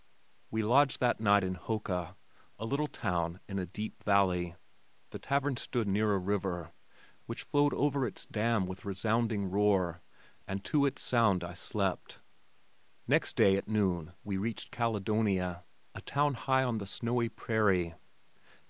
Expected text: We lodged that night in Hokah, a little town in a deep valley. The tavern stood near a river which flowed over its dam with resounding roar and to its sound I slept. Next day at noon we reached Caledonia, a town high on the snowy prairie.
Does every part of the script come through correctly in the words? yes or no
yes